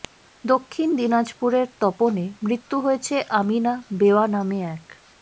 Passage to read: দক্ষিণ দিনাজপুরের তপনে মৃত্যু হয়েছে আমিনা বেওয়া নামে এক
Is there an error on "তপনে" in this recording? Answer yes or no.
no